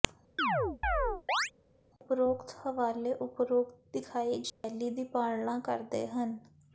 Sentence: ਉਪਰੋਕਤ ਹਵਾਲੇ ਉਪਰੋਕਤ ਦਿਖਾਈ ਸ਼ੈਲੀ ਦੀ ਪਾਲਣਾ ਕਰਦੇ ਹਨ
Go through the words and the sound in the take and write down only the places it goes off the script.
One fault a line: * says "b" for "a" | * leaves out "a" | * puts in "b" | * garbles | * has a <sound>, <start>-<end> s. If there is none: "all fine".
* has a chirp, 0.4-1.5 s
* has a dropout, 4.5-4.6 s